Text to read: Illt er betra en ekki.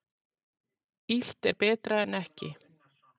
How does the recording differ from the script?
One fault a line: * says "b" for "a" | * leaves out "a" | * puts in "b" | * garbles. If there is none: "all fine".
all fine